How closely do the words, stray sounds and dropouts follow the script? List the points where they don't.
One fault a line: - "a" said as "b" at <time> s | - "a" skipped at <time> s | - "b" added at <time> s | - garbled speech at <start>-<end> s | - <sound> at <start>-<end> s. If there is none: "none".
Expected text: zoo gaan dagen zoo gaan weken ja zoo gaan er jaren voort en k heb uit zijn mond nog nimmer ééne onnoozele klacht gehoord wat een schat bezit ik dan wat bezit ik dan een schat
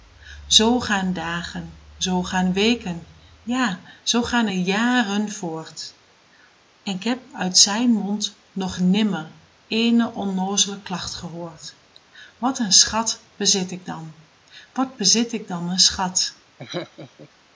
- laugh at 16.6-17.3 s